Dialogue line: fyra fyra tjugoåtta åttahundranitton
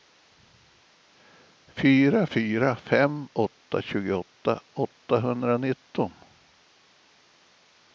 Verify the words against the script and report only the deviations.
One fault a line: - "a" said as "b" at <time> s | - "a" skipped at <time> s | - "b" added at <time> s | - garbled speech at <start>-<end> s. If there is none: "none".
- "fem åtta" added at 2.7 s